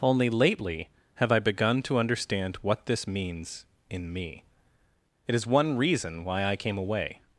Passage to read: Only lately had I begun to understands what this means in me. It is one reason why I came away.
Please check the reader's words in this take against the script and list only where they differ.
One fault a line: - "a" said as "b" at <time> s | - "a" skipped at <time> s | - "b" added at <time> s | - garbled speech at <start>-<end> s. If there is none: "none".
- "had" said as "have" at 1.1 s
- "understands" said as "understand" at 2.0 s